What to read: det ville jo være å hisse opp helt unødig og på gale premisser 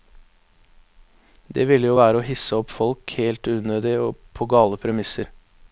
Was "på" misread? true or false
false